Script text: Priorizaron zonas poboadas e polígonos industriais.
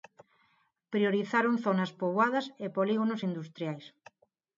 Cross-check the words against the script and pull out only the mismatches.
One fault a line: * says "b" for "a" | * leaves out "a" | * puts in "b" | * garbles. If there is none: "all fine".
all fine